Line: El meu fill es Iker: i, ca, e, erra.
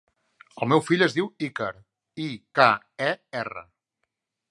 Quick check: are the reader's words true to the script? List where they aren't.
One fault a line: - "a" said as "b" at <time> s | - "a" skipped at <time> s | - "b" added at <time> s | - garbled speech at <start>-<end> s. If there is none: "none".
- "diu" added at 1.2 s